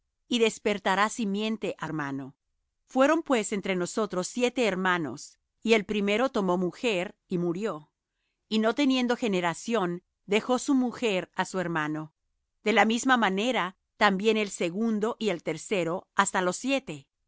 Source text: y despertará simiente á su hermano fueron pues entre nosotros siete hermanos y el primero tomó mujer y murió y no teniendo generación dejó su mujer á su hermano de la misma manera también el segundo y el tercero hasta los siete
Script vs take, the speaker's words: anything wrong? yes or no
yes